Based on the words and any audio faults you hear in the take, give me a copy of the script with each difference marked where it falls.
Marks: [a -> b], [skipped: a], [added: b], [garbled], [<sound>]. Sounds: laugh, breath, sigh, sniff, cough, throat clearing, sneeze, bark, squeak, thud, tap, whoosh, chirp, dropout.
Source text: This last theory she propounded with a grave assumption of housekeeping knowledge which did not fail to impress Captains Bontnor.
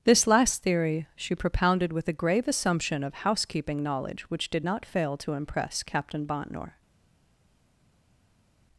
This last theory she propounded with a grave assumption of housekeeping knowledge which did not fail to impress [Captains -> Captain] Bontnor.